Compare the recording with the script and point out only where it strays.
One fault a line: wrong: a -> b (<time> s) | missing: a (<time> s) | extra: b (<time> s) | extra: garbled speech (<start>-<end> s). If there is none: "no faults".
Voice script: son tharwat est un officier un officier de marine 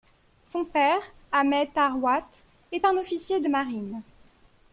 extra: père ahmed (0.7 s)
missing: un officier (3.4 s)